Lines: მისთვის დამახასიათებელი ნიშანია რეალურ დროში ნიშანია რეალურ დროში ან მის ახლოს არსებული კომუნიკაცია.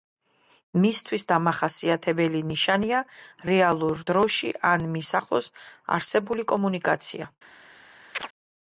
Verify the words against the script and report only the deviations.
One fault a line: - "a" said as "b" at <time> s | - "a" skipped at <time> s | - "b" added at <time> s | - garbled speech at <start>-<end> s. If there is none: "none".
- "ნიშანია რეალურ დროში" skipped at 4.5 s